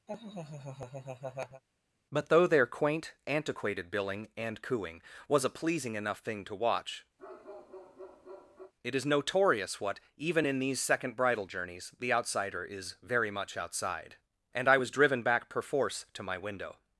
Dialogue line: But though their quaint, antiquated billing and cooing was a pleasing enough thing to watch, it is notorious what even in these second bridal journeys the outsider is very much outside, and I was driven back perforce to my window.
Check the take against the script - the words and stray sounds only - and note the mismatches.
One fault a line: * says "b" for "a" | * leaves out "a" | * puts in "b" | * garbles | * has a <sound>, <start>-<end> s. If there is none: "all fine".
* has a laugh, 0.1-1.6 s
* has a bark, 7.2-8.7 s